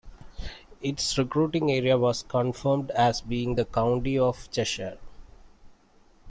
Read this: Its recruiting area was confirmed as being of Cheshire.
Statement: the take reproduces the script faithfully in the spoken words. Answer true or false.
false